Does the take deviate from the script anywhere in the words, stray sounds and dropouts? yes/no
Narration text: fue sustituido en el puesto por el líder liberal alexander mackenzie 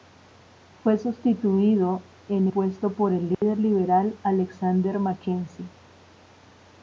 yes